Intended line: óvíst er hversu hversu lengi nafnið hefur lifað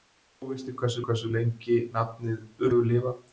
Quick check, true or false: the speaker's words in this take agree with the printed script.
true